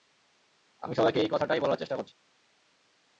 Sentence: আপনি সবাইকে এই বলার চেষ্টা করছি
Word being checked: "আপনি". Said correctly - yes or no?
no